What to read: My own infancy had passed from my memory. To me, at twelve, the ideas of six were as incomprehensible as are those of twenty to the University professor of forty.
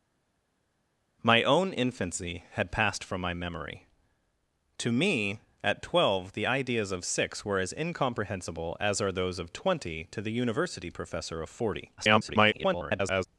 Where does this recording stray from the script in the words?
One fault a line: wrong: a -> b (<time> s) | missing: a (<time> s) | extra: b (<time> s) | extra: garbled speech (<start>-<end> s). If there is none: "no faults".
extra: garbled speech (12.0-13.3 s)